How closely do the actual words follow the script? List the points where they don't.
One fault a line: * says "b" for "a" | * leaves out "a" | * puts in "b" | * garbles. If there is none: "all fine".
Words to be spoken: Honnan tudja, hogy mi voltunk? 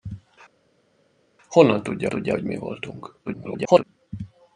* puts in "tudja"
* garbles